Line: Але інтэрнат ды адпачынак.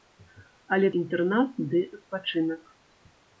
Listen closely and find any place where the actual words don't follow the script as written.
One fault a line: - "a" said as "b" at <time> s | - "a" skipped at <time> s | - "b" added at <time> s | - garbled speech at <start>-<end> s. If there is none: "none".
none